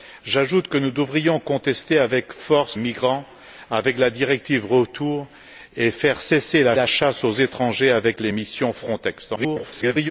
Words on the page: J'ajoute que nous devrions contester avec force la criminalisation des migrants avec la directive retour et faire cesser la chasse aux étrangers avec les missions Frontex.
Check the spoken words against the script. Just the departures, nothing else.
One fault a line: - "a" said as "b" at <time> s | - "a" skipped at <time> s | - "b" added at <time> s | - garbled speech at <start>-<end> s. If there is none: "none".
- "la criminalisation des" skipped at 2.8 s
- "la" added at 6.7 s
- garbled speech at 9.4-10.1 s